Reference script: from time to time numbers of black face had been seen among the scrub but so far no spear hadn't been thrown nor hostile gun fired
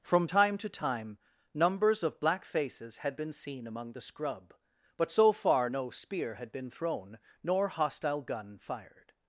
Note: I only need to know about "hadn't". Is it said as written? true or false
false